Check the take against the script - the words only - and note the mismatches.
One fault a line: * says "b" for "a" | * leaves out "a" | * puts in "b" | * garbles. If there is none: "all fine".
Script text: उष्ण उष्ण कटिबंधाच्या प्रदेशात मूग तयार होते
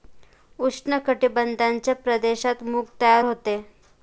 * leaves out "उष्ण"